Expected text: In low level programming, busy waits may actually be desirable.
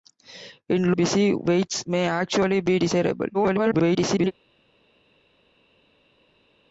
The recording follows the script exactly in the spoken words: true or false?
false